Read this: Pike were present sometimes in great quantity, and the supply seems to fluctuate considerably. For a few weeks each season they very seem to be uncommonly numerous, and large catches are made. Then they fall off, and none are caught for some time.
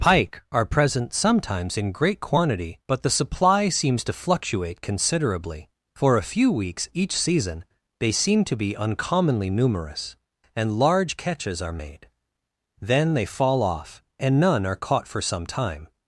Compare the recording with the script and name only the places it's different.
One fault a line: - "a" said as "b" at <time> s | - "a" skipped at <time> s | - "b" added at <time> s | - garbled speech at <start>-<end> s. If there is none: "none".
- "were" said as "are" at 0.5 s
- "and" said as "but" at 2.9 s
- "very" skipped at 8.1 s